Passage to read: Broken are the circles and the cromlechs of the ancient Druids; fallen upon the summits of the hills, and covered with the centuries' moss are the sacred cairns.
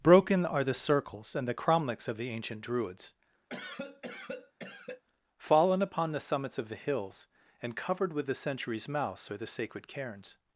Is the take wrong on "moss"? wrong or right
wrong